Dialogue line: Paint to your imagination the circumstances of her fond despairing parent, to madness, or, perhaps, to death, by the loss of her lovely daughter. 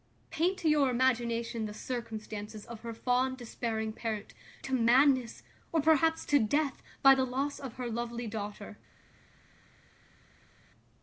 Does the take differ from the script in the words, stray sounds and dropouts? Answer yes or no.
no